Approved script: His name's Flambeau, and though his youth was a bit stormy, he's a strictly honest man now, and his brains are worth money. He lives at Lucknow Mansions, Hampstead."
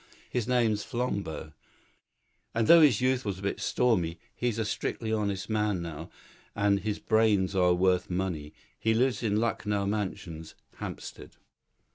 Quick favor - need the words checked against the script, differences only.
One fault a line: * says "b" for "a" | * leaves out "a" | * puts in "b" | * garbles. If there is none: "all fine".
* says "in" for "at"